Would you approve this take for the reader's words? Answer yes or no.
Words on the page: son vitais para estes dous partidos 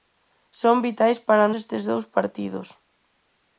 yes